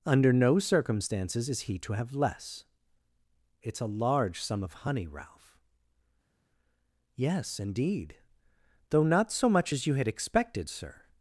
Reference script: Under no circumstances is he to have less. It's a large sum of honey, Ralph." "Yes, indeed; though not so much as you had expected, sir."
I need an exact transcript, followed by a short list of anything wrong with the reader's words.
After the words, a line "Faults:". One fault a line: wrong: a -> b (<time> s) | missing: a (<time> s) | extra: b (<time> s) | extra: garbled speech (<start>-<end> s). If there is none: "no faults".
Under no circumstances is he to have less. It's a large sum of honey, Ralph." "Yes, indeed; though not so much as you had expected, sir."
Faults:
no faults